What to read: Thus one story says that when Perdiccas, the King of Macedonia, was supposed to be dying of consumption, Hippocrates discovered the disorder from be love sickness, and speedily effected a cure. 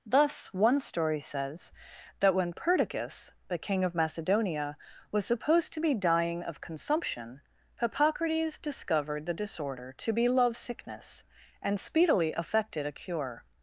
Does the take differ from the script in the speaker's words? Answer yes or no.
yes